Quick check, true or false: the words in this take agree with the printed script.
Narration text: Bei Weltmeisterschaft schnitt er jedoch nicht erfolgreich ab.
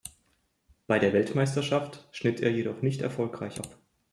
false